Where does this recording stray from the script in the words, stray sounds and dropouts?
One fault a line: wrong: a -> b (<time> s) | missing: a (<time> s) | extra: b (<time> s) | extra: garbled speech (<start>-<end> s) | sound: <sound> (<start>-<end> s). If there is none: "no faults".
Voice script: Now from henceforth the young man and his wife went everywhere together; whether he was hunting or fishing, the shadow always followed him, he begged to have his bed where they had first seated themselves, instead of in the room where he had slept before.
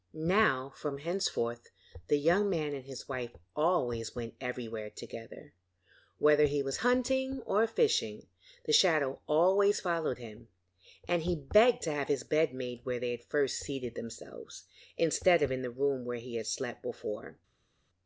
extra: always (3.5 s)
extra: and (11.1 s)
extra: made (12.5 s)